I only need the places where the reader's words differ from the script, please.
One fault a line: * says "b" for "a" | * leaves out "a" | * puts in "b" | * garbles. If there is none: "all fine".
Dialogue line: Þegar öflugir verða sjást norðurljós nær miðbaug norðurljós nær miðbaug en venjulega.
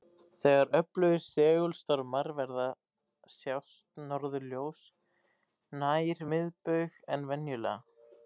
* puts in "segulstormar"
* leaves out "norðurljós nær miðbaug"